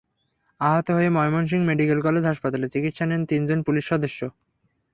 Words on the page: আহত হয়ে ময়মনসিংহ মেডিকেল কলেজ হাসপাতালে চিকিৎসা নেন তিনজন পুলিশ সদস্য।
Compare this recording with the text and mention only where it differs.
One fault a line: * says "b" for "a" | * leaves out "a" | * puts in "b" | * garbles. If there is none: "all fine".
all fine